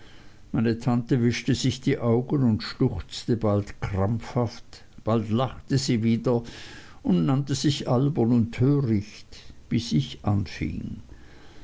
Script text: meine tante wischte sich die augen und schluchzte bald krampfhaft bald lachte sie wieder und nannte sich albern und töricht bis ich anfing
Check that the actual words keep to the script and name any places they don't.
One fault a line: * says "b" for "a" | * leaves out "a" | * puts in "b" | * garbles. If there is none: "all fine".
all fine